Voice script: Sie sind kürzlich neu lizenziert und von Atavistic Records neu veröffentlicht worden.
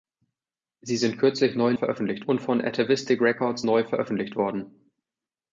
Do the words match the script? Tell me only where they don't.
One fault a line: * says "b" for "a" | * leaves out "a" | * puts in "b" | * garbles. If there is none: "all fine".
* says "veröffentlicht" for "lizenziert"